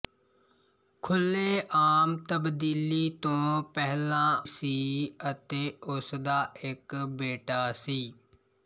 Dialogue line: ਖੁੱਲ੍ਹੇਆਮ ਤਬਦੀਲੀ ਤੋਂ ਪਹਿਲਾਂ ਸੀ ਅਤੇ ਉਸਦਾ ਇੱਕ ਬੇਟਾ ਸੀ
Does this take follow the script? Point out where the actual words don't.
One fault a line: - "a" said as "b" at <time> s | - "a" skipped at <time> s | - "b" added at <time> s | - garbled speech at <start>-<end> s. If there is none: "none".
none